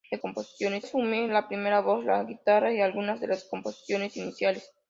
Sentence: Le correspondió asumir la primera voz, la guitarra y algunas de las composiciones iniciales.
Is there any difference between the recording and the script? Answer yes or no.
yes